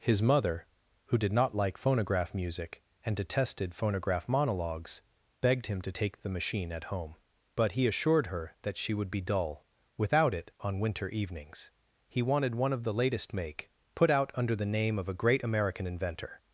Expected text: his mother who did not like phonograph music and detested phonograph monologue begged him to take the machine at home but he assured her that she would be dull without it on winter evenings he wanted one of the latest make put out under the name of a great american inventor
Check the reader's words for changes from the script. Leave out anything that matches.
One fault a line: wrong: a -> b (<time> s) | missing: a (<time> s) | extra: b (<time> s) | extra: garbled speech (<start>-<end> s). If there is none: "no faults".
wrong: monologue -> monologues (4.3 s)